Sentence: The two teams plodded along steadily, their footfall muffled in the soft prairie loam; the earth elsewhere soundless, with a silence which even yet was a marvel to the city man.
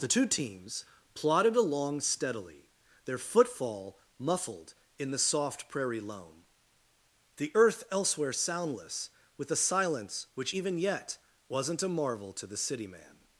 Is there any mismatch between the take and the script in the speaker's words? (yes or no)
yes